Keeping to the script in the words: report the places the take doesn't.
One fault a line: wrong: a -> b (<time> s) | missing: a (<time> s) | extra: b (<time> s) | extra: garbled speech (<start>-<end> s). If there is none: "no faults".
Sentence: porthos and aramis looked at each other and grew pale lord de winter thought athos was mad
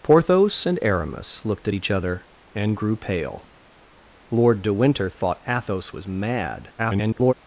extra: garbled speech (6.8-7.3 s)